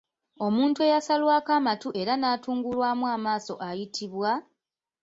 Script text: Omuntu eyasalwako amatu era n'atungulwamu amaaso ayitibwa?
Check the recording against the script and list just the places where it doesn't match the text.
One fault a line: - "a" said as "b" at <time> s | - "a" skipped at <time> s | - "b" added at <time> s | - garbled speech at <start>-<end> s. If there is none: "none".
none